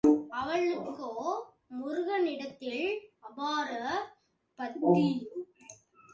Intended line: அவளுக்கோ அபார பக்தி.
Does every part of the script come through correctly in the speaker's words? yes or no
no